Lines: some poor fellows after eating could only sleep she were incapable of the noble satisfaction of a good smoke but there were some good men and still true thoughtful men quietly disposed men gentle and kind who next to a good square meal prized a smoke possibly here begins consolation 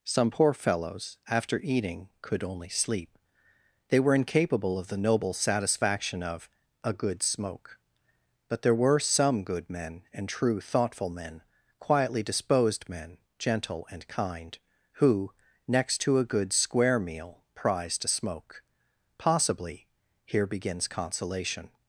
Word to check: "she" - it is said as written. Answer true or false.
false